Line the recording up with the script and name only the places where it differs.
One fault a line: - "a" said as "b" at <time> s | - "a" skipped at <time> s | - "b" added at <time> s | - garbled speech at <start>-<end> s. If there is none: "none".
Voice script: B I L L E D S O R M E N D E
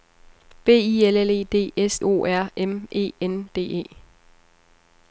none